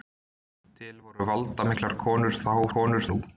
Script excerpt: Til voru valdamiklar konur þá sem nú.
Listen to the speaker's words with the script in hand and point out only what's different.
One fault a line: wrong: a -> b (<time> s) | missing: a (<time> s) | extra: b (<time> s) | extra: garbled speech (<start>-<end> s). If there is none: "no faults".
wrong: sem -> konur (2.7 s)